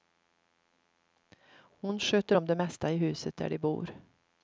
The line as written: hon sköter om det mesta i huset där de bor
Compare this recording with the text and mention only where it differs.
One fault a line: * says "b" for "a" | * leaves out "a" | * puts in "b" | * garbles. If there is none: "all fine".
all fine